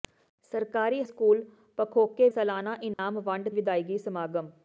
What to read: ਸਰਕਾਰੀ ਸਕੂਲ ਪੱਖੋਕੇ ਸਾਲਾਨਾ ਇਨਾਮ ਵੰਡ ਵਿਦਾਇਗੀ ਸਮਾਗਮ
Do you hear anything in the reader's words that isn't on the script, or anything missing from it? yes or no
no